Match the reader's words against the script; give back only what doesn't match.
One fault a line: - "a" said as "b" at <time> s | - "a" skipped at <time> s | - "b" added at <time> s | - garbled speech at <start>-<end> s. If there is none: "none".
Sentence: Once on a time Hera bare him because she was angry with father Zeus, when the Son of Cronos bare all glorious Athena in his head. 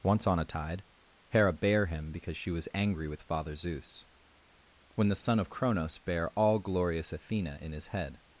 - "time" said as "tide" at 0.5 s